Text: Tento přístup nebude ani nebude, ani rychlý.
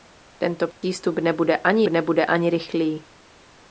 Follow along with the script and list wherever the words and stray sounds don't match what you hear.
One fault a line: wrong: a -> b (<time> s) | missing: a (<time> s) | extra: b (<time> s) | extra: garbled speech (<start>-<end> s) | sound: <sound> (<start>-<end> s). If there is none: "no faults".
sound: dropout (0.7-0.8 s)